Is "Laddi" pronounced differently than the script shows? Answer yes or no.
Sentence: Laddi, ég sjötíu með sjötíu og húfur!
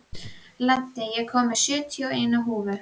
no